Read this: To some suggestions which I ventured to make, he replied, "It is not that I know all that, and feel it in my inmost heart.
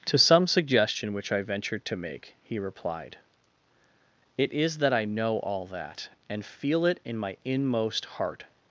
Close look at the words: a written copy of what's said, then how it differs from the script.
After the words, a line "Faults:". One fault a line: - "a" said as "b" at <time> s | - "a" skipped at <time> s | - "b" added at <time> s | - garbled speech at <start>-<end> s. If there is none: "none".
To some suggestion which I ventured to make, he replied, "It is that I know all that, and feel it in my inmost heart.
Faults:
- "suggestions" said as "suggestion" at 0.5 s
- "not" skipped at 4.8 s